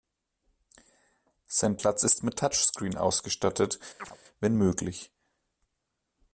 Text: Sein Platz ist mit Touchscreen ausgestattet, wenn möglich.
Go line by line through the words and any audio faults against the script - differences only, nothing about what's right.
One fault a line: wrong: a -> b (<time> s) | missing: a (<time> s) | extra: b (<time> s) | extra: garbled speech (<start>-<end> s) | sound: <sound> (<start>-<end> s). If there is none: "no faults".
sound: chirp (4.0-4.2 s)